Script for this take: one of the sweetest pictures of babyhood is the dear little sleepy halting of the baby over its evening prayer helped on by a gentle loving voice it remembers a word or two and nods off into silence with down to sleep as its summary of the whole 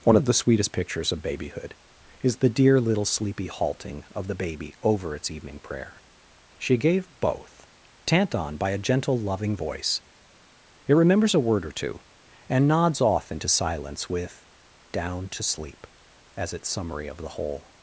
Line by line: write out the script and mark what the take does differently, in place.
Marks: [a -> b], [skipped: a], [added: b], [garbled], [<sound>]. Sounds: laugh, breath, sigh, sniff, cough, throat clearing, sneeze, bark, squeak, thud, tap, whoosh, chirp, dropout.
one of the sweetest pictures of babyhood is the dear little sleepy halting of the baby over its evening prayer [helped -> she gave both tant] on by a gentle loving voice it remembers a word or two and nods off into silence with down to sleep as its summary of the whole